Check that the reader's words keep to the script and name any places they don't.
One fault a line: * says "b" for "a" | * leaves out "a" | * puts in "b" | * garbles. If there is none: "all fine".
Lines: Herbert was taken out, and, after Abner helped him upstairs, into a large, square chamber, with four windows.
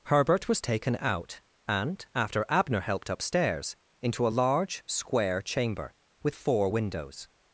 * leaves out "him"